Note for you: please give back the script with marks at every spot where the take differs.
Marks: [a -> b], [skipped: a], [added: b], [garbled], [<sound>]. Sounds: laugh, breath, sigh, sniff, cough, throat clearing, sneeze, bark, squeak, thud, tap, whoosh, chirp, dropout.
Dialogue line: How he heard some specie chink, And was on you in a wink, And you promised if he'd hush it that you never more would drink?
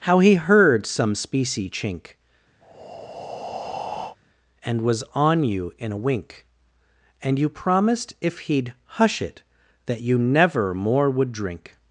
How he heard some specie chink, [breath] And was on you in a wink, And you promised if he'd hush it that you never more would drink?